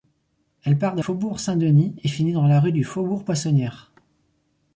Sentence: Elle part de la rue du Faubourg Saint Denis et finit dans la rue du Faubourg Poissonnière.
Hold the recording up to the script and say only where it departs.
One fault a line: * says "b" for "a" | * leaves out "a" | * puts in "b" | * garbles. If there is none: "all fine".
* leaves out "la rue du"